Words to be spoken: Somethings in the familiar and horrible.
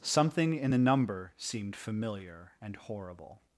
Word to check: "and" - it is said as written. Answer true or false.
true